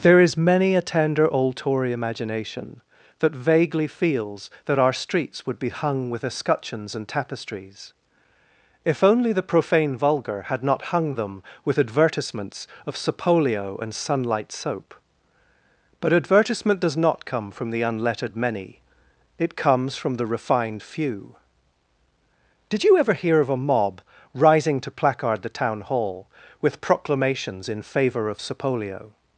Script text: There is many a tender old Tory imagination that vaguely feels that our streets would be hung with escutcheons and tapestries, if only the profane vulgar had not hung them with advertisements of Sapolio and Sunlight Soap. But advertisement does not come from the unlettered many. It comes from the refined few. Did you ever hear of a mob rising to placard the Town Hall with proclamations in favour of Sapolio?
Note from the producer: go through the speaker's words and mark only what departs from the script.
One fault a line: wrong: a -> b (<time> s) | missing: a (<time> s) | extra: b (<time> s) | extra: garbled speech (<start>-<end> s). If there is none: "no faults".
no faults